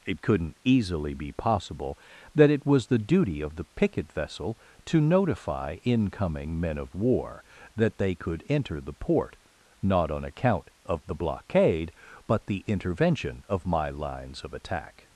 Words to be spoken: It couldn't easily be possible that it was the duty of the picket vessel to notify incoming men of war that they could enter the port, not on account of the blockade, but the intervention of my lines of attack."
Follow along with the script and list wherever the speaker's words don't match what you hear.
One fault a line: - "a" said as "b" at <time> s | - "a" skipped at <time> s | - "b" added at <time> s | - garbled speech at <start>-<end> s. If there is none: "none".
none